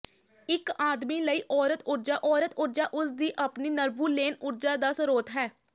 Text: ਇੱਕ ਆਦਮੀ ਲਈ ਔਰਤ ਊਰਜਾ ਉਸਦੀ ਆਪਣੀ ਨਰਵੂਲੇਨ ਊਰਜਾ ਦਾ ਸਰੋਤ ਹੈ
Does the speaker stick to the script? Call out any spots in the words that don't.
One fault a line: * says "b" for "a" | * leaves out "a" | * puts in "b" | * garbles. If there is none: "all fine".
* puts in "ਔਰਤ ਊਰਜਾ"